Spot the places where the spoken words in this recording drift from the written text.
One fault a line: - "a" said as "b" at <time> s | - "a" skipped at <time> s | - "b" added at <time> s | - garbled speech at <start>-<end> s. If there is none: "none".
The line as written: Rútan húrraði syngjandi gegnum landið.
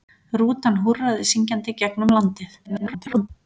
- garbled speech at 2.6-3.3 s